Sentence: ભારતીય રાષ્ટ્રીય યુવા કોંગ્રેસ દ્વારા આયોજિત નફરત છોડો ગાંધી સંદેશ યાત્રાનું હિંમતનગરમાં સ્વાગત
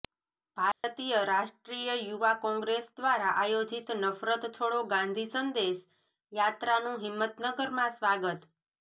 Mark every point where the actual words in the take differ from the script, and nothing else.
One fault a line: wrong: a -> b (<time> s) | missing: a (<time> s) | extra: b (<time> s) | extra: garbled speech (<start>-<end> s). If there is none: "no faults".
no faults